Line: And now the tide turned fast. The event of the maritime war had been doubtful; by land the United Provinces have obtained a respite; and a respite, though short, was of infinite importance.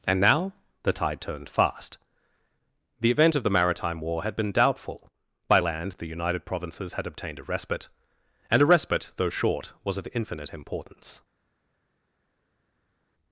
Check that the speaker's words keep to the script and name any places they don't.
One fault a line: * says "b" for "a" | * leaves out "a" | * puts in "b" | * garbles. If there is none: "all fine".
* says "had" for "have"